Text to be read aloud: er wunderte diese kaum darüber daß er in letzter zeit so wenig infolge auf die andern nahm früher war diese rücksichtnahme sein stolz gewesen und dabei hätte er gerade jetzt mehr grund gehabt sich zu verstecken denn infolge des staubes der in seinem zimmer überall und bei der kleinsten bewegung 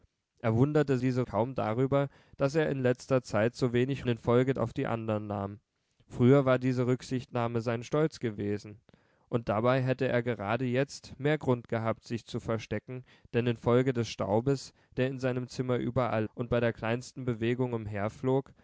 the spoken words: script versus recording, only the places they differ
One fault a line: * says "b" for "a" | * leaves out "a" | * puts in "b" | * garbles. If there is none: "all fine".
all fine